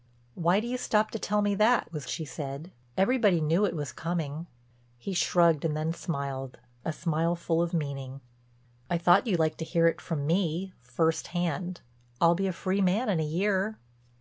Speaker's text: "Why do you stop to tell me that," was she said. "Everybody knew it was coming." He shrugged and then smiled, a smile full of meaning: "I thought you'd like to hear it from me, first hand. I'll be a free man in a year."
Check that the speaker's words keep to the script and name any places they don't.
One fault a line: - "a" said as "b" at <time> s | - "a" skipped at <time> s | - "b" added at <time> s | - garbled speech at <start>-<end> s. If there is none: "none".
none